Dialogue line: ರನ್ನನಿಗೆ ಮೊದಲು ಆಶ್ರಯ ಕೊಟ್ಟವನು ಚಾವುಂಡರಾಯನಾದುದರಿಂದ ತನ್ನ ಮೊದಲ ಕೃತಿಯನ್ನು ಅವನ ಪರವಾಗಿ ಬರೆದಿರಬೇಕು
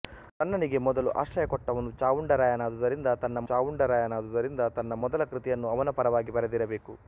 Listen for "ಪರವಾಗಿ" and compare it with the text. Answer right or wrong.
right